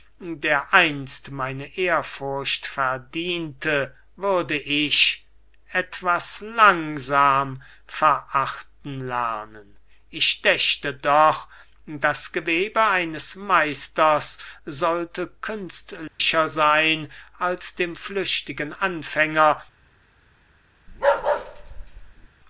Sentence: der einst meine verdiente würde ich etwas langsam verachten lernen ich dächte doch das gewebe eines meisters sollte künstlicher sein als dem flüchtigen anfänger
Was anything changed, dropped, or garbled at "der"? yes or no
no